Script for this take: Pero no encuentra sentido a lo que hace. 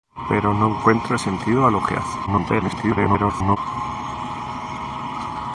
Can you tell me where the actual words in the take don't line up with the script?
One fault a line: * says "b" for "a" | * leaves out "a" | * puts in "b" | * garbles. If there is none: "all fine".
* garbles